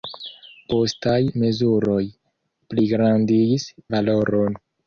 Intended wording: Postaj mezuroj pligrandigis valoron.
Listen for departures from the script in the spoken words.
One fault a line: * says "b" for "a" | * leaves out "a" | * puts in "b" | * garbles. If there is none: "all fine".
all fine